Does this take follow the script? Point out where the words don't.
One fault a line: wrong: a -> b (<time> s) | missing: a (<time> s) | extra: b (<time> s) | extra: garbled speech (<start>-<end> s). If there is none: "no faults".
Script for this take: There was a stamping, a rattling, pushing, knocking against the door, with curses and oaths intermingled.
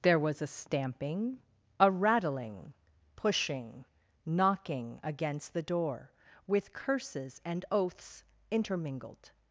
no faults